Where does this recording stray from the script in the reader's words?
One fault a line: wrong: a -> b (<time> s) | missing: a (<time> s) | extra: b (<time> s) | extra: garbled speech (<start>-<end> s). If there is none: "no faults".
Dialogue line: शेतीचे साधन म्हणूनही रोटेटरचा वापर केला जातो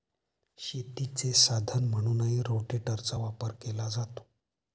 no faults